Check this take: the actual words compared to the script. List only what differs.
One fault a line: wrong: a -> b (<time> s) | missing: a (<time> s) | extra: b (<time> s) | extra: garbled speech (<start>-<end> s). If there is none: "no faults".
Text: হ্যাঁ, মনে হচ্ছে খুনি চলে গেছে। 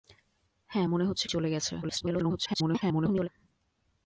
missing: খুনি (1.2 s)
extra: garbled speech (1.8-3.3 s)